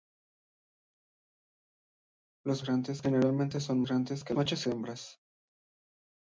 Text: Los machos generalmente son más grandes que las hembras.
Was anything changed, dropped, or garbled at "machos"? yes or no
yes